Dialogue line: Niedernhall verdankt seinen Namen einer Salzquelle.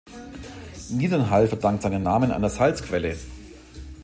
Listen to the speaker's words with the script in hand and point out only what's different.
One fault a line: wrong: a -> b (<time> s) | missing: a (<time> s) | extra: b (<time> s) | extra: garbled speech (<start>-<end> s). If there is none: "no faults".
no faults